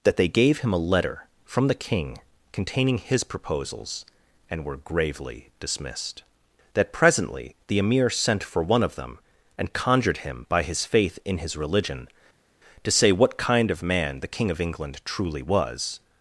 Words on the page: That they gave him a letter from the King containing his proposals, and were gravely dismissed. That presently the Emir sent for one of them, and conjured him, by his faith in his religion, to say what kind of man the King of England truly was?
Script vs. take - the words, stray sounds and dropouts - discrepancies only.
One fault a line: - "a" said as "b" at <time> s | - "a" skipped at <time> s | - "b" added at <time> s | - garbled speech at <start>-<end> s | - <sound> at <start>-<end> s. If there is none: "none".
none